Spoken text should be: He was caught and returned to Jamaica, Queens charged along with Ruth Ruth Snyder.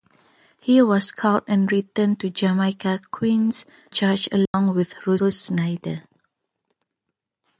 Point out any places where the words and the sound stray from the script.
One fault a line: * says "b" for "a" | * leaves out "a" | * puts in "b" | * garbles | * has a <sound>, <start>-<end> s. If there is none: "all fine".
* has a dropout, 4.5-4.5 s